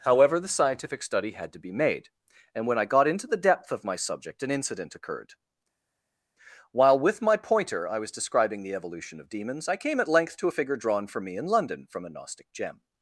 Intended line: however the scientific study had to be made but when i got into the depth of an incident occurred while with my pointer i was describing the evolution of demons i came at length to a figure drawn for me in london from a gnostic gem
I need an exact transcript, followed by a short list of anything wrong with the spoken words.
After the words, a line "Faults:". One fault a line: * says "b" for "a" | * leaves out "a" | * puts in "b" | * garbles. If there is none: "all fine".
however the scientific study had to be made and when i got into the depth of my subject an incident occurred while with my pointer i was describing the evolution of demons i came at length to a figure drawn for me in london from a gnostic gem
Faults:
* says "and" for "but"
* puts in "my subject"